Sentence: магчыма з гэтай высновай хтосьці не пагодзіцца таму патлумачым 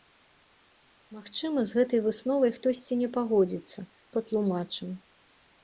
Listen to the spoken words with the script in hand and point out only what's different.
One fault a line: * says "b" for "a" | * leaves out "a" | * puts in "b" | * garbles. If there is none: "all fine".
* leaves out "таму"